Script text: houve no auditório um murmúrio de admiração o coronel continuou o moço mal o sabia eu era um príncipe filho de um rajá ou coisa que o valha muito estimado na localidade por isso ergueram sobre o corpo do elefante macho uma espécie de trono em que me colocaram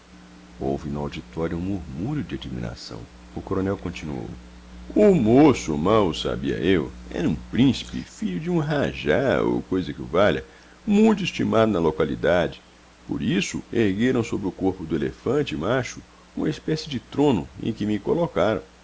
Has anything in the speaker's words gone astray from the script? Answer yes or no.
no